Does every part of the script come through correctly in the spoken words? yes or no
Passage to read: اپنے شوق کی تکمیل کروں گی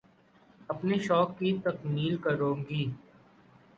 yes